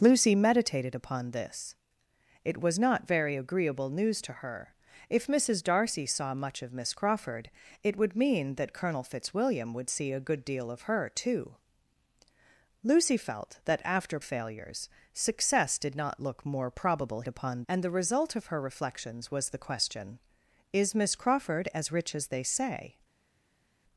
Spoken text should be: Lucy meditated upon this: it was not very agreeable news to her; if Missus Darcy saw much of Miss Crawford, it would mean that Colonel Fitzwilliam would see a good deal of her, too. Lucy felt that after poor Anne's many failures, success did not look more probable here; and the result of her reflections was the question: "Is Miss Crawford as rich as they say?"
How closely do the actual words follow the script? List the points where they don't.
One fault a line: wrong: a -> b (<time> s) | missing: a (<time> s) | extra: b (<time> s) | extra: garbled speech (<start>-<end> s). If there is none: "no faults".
missing: poor Anne's many (14.2 s)
wrong: here -> upon (17.3 s)